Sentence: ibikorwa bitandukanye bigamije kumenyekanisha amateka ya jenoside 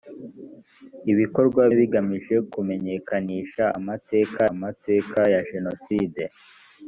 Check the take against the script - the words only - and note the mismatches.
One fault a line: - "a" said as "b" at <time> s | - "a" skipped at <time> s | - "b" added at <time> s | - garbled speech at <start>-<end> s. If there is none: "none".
- "bitandukanye" skipped at 1.6 s
- "amateka" added at 4.5 s